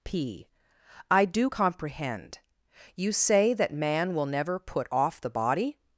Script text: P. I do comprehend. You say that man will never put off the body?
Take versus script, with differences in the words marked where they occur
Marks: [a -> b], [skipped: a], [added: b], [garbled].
P. I do comprehend. You say that man will never put off the body?